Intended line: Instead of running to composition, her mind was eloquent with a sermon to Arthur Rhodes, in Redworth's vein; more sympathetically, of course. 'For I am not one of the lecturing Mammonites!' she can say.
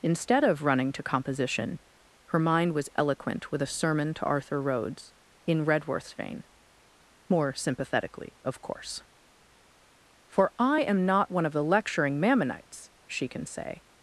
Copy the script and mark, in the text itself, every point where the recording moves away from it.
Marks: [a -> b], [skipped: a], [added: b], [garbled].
Instead of running to composition, her mind was eloquent with a sermon to Arthur Rhodes, in Redworth's vein; more sympathetically, of course. 'For I am not one of the lecturing Mammonites!' she can say.